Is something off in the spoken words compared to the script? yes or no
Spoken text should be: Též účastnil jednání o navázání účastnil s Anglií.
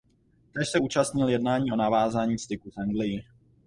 yes